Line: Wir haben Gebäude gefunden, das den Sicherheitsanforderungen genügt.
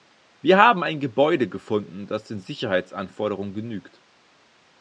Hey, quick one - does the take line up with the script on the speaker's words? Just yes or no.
no